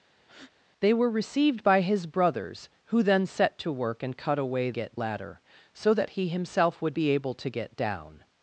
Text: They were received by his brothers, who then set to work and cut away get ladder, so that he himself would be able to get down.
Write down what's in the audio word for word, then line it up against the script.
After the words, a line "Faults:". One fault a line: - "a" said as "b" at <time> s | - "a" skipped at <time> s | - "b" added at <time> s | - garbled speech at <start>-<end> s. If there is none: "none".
They were received by his brothers, who then set to work and cut away get ladder, so that he himself would be able to get down.
Faults:
none